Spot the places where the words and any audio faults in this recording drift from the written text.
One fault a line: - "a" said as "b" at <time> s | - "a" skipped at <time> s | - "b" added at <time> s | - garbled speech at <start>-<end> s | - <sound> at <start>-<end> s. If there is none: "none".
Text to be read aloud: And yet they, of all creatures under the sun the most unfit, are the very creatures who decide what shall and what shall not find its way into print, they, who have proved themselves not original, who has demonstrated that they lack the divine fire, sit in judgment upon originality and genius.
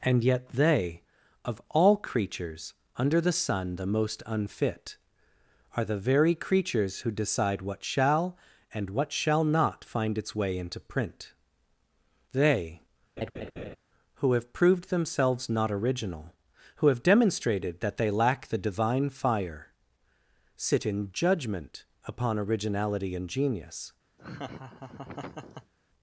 - laugh at 13.2-13.8 s
- "has" said as "have" at 16.9 s
- laugh at 24.2-25.7 s